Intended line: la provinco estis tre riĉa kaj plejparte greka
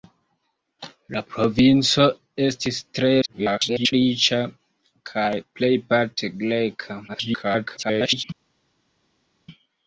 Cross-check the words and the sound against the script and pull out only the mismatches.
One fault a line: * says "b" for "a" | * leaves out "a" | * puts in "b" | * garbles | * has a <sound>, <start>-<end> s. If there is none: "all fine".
* garbles
* garbles